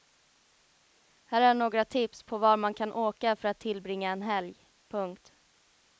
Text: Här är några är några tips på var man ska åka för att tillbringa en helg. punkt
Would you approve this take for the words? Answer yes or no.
no